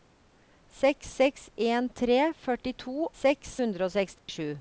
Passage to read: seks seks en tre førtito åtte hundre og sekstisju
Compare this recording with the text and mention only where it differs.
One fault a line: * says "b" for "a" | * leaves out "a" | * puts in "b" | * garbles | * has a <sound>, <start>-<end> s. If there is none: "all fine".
* says "seks" for "åtte"
* has a dropout, 4.2-4.3 s